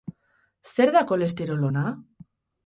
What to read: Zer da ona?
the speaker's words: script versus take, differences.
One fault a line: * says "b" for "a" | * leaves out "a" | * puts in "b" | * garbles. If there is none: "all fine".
* puts in "kolesterol"